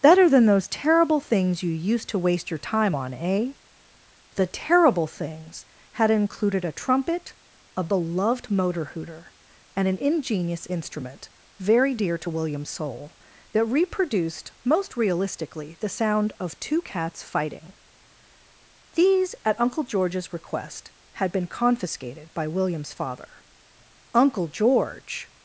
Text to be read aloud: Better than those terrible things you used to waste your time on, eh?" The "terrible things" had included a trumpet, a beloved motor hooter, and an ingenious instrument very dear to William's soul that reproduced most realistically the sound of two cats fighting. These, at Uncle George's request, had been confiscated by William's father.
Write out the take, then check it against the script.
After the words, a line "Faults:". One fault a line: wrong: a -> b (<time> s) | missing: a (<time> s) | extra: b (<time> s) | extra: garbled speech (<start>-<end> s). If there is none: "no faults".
Better than those terrible things you used to waste your time on, eh?" The "terrible things" had included a trumpet, a beloved motor hooter, and an ingenious instrument very dear to William's soul that reproduced most realistically the sound of two cats fighting. These, at Uncle George's request, had been confiscated by William's father. Uncle George
Faults:
extra: Uncle George (24.1 s)